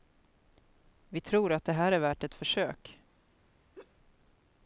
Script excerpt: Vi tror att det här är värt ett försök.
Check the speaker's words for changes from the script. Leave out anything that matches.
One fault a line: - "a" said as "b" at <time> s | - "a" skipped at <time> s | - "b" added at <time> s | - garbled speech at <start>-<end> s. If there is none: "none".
none